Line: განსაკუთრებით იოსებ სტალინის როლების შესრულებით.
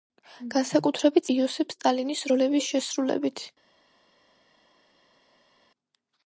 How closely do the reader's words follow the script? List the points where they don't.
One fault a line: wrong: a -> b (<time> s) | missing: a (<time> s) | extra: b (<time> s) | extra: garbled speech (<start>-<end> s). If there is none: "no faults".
no faults